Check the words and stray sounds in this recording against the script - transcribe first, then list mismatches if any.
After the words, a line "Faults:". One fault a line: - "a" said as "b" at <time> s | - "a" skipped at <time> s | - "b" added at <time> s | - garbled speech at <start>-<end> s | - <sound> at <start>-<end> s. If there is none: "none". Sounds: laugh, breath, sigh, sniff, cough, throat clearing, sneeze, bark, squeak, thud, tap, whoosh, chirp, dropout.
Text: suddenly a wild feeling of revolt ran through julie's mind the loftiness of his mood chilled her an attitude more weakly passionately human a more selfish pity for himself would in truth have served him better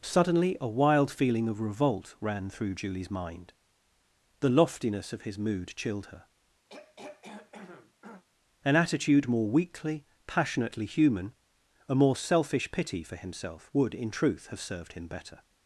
suddenly a wild feeling of revolt ran through julie's mind the loftiness of his mood chilled her an attitude more weakly passionately human a more selfish pity for himself would in truth have served him better
Faults:
- throat clearing at 6.7-8.2 s